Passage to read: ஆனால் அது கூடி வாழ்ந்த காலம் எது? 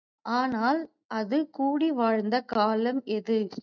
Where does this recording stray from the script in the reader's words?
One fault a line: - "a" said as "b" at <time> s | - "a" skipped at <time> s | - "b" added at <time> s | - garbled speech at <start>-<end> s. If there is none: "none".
none